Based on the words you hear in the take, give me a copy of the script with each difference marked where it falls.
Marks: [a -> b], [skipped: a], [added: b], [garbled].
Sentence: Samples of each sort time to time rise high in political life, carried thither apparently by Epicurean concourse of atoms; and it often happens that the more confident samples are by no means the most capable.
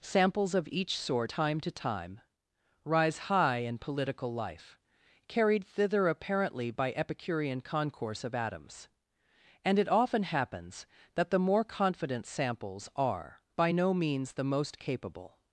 Samples of each sort time to time rise high in political life, carried thither apparently by Epicurean concourse of atoms; and it often happens that the more confident samples are by no means the most capable.